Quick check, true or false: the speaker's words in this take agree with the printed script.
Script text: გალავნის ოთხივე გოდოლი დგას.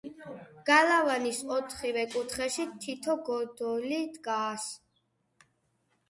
false